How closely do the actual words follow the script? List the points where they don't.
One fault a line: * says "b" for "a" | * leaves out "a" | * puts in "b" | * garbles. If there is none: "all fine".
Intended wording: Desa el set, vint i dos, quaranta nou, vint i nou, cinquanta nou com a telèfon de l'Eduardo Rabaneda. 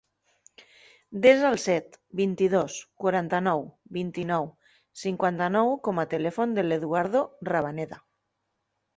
all fine